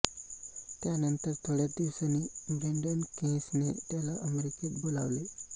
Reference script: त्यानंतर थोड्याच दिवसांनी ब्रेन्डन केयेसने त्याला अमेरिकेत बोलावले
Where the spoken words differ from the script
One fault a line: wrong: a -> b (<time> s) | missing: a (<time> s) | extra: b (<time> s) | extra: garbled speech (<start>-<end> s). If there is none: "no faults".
no faults